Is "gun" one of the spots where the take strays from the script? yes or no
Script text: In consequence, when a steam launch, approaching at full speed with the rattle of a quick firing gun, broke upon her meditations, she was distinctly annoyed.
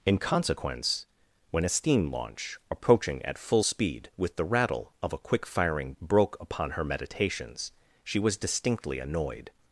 yes